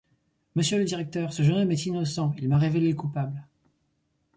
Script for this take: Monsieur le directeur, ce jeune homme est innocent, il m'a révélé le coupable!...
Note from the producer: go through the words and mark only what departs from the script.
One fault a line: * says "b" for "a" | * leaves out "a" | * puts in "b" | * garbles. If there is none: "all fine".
all fine